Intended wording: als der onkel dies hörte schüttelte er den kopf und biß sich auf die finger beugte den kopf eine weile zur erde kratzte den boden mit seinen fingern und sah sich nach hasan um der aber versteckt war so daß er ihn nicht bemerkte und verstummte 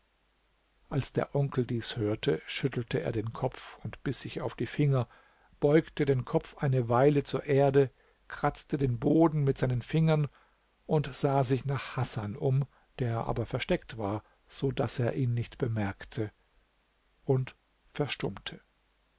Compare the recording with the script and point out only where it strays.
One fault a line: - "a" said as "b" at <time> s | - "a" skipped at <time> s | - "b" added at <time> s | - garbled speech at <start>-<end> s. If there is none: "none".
none